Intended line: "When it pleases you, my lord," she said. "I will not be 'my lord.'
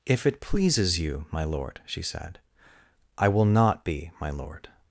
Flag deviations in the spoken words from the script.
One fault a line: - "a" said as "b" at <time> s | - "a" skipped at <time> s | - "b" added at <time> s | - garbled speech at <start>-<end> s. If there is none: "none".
- "When" said as "If" at 0.1 s